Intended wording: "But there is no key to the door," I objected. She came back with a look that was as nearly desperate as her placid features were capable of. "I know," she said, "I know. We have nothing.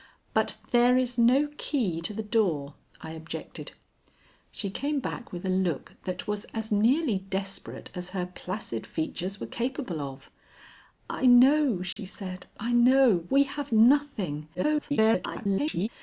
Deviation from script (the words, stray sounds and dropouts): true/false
true